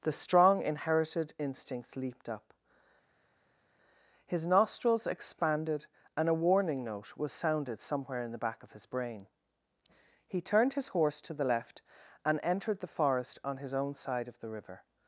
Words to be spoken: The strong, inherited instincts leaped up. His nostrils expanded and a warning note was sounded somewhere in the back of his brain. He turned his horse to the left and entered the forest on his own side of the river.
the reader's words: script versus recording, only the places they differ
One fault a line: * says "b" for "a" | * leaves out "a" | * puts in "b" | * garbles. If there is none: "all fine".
all fine